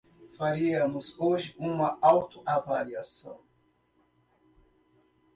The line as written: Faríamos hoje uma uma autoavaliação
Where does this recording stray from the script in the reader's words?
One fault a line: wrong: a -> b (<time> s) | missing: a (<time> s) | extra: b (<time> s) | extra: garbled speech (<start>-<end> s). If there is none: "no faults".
missing: uma (2.0 s)